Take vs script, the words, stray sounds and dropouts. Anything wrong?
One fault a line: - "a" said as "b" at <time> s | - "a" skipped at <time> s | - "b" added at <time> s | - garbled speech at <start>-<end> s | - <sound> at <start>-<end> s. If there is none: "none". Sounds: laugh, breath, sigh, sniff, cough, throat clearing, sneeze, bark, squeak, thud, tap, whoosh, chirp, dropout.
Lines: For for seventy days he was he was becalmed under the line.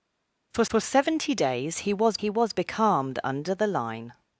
none